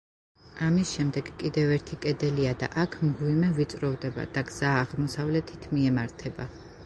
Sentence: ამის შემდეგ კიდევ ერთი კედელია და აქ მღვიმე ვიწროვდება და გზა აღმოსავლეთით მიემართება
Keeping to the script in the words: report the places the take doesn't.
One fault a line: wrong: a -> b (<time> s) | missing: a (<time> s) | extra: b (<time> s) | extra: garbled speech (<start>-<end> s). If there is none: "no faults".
no faults